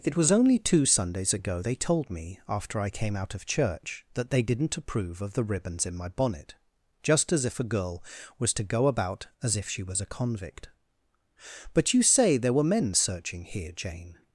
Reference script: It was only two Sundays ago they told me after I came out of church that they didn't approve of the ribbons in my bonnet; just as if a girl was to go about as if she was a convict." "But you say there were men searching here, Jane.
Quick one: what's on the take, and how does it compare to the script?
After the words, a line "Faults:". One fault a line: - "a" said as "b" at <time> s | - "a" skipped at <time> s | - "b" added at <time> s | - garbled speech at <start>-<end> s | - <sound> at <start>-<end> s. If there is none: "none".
It was only two Sundays ago they told me after I came out of church that they didn't approve of the ribbons in my bonnet; just as if a girl was to go about as if she was a convict." "But you say there were men searching here, Jane.
Faults:
none